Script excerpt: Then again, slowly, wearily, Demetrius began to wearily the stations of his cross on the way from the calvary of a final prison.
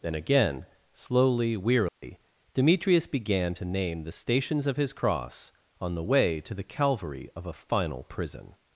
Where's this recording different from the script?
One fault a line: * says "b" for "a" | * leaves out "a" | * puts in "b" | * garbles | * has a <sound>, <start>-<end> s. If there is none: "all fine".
* has a dropout, 1.9-2.0 s
* says "name" for "wearily"
* says "to" for "from"